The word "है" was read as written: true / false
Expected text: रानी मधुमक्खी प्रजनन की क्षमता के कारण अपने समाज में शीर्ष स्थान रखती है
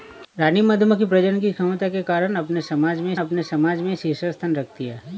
true